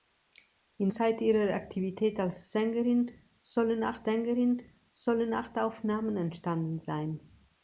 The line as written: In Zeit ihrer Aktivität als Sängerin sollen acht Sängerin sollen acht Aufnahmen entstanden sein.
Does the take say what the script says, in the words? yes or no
yes